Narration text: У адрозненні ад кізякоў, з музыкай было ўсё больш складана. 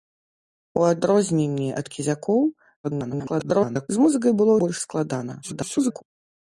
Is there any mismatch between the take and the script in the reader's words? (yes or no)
yes